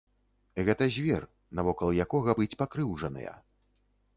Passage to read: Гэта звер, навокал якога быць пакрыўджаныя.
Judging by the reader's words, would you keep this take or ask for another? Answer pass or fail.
pass